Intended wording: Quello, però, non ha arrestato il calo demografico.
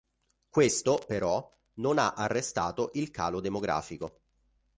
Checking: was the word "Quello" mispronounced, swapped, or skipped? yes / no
yes